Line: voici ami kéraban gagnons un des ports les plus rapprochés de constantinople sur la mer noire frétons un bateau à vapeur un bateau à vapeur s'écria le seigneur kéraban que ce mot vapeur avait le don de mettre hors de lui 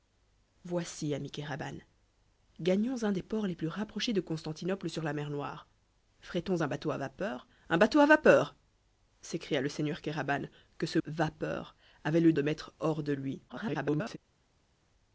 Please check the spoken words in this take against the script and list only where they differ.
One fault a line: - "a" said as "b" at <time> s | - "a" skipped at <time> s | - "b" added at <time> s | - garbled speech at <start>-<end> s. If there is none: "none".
- "mot" skipped at 11.0 s
- "don" skipped at 12.3 s
- garbled speech at 13.5-14.2 s